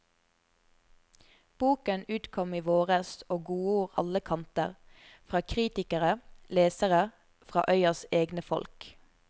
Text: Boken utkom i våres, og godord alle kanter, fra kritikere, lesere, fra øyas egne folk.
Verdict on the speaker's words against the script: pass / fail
pass